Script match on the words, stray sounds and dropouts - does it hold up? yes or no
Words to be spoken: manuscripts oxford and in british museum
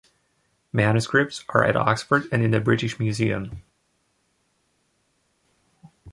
no